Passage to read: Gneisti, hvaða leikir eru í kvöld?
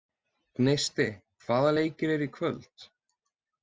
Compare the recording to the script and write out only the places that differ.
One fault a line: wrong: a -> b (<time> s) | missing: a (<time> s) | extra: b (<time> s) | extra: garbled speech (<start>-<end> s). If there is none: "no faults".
no faults